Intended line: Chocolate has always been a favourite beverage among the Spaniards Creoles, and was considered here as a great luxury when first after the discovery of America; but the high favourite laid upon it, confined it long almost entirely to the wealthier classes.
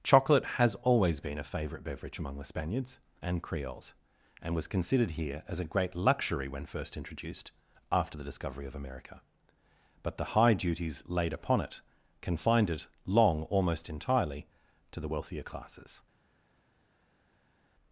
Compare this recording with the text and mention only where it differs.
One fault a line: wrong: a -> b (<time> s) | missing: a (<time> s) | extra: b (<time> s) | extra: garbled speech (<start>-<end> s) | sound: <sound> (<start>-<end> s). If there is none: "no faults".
extra: and (3.2 s)
extra: introduced (7.0 s)
wrong: favourite -> duties (10.5 s)